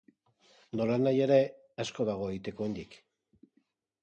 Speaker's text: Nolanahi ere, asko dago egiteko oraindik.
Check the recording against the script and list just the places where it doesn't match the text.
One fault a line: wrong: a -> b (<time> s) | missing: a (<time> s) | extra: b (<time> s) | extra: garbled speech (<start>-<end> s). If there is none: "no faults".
no faults